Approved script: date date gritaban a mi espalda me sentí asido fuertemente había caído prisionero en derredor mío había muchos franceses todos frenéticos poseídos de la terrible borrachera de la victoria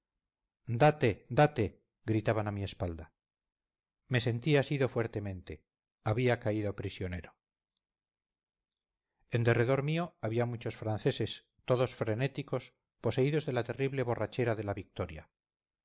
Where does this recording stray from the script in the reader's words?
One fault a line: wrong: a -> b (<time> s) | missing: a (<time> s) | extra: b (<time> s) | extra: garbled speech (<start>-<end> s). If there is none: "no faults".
no faults